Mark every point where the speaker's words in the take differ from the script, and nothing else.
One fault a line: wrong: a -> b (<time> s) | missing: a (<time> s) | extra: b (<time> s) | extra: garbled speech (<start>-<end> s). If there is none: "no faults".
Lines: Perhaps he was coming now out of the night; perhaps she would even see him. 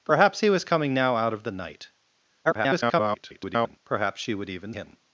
extra: garbled speech (2.4-3.8 s)
missing: see (4.7 s)